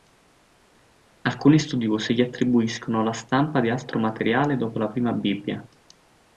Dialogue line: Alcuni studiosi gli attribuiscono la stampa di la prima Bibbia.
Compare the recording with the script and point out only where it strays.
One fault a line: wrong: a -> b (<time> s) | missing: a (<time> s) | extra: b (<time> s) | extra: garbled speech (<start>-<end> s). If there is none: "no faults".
extra: altro materiale dopo (3.7 s)